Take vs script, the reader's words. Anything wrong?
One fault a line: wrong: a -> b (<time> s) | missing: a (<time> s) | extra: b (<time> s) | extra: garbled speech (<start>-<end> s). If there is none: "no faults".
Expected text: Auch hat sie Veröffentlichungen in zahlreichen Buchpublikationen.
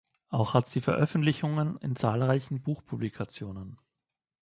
no faults